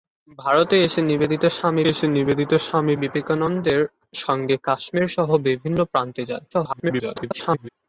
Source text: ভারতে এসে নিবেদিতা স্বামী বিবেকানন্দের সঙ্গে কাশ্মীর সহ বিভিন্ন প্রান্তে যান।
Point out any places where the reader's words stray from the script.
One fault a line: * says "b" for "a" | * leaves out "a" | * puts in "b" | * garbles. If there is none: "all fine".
* puts in "এসে নিবেদিতা স্বামী"
* garbles